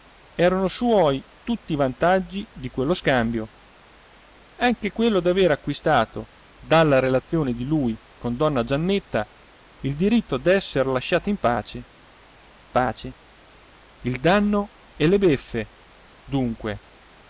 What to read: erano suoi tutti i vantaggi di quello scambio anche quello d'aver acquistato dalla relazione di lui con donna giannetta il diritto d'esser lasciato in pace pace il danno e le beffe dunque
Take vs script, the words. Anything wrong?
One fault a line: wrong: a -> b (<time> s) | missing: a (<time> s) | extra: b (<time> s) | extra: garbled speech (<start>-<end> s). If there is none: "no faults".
no faults